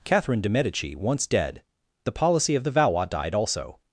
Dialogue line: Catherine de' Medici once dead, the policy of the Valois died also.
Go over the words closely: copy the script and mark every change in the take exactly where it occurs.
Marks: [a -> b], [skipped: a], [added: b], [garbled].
Catherine de' Medici once dead, the policy of the Valois died also.